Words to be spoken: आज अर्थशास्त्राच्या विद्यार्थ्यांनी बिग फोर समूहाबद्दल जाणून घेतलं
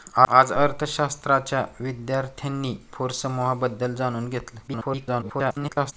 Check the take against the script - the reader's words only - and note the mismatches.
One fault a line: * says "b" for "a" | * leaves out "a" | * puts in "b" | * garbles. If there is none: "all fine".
* leaves out "बिग"
* garbles